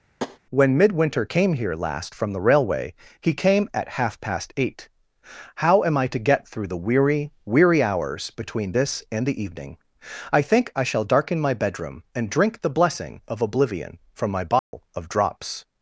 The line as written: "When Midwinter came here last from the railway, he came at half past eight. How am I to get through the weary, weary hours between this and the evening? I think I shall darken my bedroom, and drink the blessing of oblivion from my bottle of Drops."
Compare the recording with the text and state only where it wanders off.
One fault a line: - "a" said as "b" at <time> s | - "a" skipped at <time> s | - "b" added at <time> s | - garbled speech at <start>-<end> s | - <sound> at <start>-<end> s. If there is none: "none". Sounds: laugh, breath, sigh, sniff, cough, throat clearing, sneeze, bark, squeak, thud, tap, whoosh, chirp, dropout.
- tap at 0.2-0.4 s
- dropout at 14.6-14.7 s